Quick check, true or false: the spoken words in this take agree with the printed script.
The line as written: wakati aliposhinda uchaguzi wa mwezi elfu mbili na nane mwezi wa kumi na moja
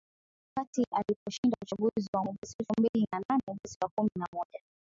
true